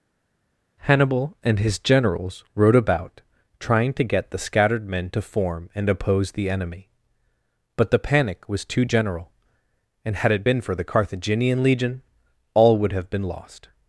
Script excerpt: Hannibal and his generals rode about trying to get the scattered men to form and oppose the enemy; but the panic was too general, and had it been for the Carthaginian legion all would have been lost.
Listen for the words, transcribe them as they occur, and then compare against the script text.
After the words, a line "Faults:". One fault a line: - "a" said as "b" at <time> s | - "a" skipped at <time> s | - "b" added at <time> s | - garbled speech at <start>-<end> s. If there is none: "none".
Hannibal and his generals rode about trying to get the scattered men to form and oppose the enemy; but the panic was too general, and had it been for the Carthaginian legion all would have been lost.
Faults:
none